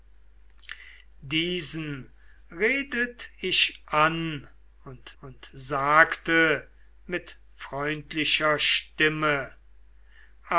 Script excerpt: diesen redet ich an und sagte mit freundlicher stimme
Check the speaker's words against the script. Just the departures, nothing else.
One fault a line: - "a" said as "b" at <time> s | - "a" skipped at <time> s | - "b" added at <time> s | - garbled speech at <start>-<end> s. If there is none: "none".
- "und" added at 5.2 s